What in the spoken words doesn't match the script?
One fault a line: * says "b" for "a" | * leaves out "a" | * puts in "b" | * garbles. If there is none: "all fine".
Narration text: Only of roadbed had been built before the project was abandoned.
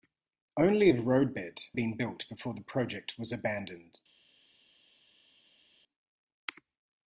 * leaves out "had"